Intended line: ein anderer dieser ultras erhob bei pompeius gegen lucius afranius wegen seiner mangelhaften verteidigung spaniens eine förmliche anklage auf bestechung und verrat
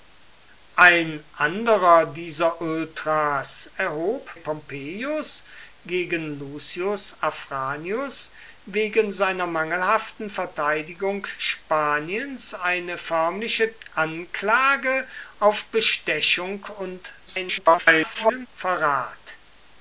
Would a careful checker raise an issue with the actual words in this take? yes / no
yes